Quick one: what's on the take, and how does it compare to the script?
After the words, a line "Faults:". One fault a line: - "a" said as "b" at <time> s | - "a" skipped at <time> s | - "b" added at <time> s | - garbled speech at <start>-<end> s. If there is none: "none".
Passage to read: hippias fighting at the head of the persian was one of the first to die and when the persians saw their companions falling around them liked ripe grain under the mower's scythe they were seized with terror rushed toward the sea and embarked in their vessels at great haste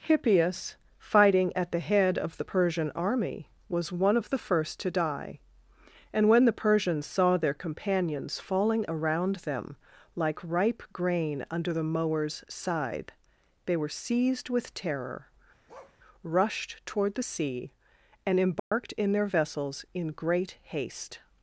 hippias fighting at the head of the persian army was one of the first to die and when the persians saw their companions falling around them like ripe grain under the mower's scythe they were seized with terror rushed toward the sea and embarked in their vessels in great haste
Faults:
- "army" added at 2.9 s
- "liked" said as "like" at 10.1 s
- "at" said as "in" at 19.9 s